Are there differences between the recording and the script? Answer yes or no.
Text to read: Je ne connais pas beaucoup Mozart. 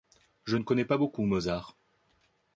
no